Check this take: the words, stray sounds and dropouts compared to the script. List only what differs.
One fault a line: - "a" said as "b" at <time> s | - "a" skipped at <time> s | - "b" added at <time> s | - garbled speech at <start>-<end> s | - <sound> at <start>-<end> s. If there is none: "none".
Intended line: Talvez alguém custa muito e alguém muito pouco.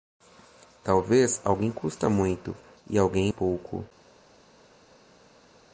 - "muito" skipped at 3.3 s